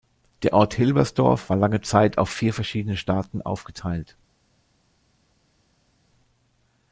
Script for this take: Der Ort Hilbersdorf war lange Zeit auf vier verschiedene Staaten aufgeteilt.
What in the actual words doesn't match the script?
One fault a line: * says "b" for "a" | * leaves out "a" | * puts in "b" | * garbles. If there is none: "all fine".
all fine